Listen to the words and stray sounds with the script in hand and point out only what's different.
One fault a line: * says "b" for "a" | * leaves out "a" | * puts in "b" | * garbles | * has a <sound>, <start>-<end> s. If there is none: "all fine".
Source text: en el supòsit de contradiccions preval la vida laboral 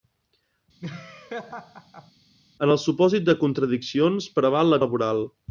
* has a laugh, 0.8-2.1 s
* leaves out "vida"